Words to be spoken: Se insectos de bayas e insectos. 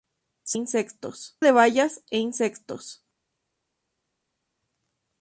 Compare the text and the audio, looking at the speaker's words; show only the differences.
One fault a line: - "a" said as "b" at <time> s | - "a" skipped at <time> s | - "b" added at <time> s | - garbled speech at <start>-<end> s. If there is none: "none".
none